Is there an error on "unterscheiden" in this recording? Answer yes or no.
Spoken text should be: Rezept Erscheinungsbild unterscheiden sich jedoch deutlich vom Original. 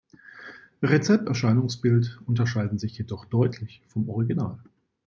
no